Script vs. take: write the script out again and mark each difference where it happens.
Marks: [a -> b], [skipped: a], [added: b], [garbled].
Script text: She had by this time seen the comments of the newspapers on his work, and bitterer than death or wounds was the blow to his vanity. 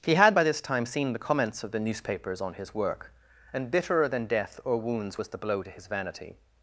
[She -> He] had by this time seen the comments of the newspapers on his work, and bitterer than death or wounds was the blow to his vanity.